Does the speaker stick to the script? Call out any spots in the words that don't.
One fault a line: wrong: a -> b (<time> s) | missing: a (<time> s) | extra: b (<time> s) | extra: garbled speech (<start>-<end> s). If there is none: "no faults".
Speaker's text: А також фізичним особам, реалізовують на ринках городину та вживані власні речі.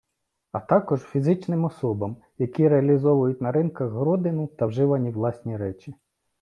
extra: які (2.4 s)